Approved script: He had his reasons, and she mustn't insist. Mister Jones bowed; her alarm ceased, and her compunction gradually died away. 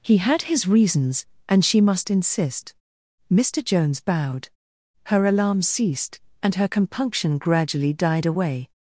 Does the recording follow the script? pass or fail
fail